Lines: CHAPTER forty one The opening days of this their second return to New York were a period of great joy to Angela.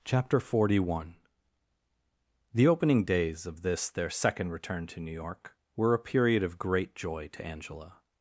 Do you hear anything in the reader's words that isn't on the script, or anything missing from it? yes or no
no